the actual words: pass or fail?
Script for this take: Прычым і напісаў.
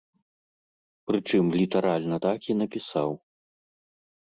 fail